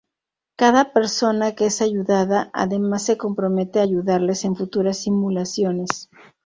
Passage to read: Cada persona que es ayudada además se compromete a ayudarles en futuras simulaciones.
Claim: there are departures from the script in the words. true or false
false